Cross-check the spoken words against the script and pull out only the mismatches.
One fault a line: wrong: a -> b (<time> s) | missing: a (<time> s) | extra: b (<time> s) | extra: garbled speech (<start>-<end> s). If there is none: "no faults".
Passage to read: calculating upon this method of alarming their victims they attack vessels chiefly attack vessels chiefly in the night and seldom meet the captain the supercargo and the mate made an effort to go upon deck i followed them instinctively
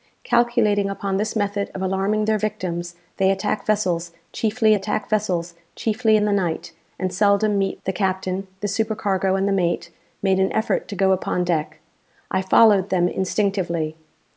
no faults